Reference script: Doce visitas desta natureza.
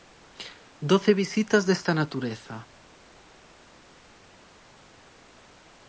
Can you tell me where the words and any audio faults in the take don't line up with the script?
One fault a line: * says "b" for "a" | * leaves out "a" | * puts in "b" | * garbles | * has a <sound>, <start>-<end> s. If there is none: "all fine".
all fine